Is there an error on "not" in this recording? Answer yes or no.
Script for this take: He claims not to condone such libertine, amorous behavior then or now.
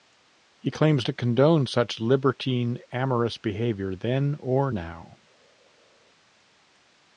yes